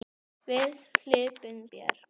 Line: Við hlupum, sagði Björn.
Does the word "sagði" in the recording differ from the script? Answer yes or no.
yes